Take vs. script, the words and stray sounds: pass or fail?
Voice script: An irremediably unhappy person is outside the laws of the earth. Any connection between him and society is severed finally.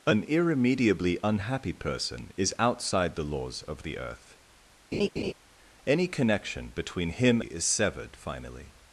fail